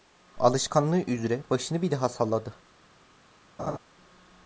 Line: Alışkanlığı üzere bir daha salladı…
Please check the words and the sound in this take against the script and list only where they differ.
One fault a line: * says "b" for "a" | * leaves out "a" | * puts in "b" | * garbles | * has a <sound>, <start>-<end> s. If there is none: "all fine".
* puts in "başını"
* has a laugh, 3.6-3.8 s